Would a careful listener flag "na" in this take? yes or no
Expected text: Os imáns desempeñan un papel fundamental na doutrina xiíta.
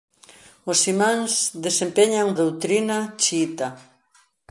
yes